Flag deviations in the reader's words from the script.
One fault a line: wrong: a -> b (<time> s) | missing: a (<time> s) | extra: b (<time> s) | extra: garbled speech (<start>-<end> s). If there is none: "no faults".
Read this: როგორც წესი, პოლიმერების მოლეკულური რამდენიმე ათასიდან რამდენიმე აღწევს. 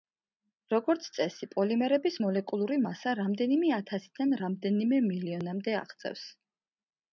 extra: მასა (2.8 s)
extra: მილიონამდე (5.1 s)